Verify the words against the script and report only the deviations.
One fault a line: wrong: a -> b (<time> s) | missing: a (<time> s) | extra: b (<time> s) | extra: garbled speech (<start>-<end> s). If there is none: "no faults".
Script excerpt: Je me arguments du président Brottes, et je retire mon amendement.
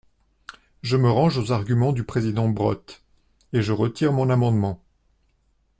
extra: range aux (1.1 s)